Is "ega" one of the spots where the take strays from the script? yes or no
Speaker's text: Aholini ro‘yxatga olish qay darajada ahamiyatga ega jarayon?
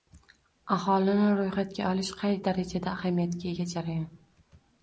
no